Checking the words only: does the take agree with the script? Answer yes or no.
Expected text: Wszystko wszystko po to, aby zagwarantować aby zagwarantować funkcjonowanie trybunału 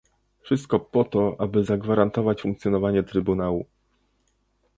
no